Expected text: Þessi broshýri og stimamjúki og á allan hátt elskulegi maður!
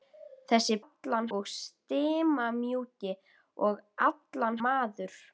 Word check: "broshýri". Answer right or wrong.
wrong